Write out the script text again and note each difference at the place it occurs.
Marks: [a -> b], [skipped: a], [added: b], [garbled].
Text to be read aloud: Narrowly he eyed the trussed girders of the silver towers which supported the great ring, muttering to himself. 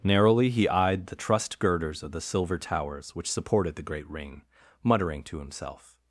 Narrowly he eyed the trussed girders of the silver towers which supported the great ring, muttering to himself.